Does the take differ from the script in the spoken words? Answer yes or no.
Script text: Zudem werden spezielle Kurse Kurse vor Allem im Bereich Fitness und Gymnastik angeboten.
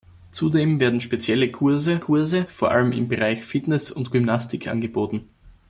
no